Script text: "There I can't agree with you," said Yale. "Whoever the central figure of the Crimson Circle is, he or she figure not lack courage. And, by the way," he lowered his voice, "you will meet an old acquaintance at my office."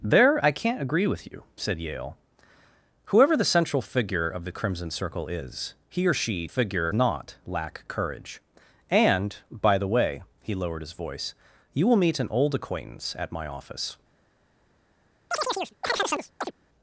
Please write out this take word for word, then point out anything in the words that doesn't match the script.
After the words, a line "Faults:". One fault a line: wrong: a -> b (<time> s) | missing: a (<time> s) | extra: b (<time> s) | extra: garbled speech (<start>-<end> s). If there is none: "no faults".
"There I can't agree with you," said Yale. "Whoever the central figure of the Crimson Circle is, he or she figure not lack courage. And, by the way," he lowered his voice, "you will meet an old acquaintance at my office."
Faults:
no faults